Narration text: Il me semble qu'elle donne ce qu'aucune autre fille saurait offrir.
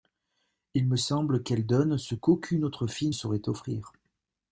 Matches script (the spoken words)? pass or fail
pass